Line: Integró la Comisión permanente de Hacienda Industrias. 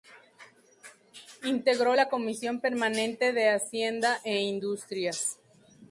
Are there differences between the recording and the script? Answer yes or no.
yes